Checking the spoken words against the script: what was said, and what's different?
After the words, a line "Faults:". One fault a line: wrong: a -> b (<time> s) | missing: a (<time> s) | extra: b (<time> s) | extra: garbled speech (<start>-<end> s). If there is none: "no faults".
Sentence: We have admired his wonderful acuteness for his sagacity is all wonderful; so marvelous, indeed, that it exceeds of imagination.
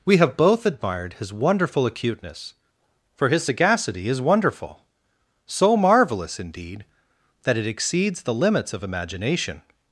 We have both admired his wonderful acuteness for his sagacity is wonderful; so marvelous, indeed, that it exceeds the limits of imagination.
Faults:
extra: both (0.4 s)
missing: all (4.2 s)
extra: the limits (8.2 s)